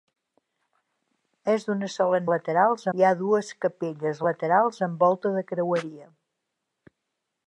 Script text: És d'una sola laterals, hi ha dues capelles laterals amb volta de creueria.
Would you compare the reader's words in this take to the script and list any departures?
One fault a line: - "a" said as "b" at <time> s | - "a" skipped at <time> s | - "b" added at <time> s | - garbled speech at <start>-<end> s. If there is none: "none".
none